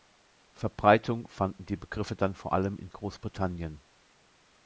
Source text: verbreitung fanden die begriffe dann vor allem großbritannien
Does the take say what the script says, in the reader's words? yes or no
no